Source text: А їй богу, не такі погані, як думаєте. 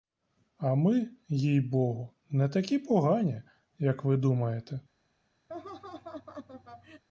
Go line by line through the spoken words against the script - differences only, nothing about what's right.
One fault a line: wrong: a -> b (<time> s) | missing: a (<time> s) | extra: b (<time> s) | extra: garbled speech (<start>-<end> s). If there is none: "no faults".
extra: ми (0.8 s)
extra: ви (4.0 s)